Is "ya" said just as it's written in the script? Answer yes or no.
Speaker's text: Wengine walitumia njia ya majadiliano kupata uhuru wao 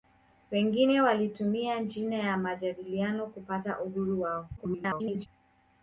yes